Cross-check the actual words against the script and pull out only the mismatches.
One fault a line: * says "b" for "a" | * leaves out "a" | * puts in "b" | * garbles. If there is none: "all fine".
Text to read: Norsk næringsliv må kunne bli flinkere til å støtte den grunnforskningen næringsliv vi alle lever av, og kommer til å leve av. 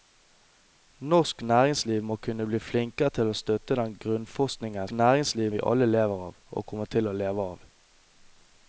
all fine